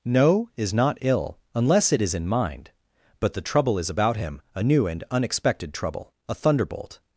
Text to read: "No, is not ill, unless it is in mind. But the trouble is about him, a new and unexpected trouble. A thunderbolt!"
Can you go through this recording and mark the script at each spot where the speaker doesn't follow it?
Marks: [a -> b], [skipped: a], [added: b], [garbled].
"No, is not ill, unless it is in mind. But the trouble is about him, a new and unexpected trouble. A thunderbolt!"